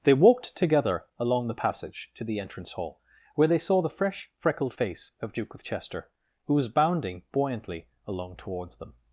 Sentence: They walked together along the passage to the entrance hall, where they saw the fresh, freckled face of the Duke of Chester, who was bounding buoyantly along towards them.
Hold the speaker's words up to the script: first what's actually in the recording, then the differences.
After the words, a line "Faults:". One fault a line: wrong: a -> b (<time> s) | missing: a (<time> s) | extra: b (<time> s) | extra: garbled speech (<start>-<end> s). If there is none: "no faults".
They walked together along the passage to the entrance hall, where they saw the fresh, freckled face of Duke of Chester, who was bounding buoyantly along towards them.
Faults:
missing: the (5.3 s)